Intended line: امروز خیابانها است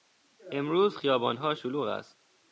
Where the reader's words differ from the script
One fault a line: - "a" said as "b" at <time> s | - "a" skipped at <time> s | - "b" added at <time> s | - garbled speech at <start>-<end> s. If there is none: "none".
- "شلوغ" added at 1.5 s